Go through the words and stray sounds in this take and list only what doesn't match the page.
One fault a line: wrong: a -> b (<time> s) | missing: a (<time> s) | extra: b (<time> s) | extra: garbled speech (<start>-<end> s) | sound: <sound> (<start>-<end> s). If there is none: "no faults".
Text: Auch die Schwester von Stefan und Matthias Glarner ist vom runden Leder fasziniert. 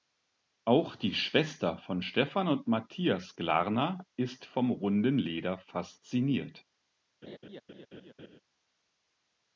sound: laugh (7.2-8.4 s)